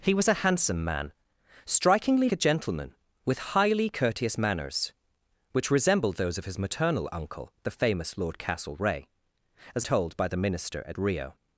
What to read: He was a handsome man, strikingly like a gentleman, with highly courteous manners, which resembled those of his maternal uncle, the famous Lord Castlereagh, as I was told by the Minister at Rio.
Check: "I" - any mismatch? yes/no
yes